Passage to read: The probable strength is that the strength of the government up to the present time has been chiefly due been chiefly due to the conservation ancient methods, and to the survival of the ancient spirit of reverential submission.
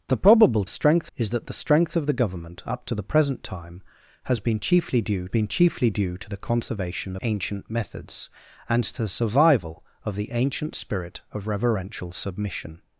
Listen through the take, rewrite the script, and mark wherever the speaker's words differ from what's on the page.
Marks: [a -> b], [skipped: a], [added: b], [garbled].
The probable strength is that the strength of the government up to the present time has been chiefly due been chiefly due to the conservation ancient methods, and to the survival of the ancient spirit of reverential submission.